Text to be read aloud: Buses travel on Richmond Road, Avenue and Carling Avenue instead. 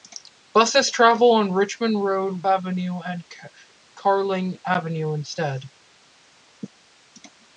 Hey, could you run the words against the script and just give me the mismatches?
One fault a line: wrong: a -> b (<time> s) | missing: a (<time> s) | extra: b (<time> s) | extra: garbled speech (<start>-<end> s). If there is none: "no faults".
no faults